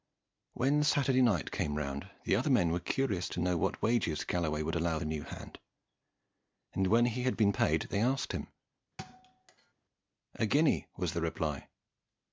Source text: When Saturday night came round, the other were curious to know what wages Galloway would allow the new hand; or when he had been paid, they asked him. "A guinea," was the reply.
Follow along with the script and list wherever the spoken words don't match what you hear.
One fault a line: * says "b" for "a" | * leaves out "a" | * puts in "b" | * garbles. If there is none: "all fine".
* puts in "men"
* says "and" for "or"